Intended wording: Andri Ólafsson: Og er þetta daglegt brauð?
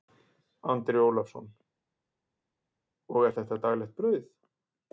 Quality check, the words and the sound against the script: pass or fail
pass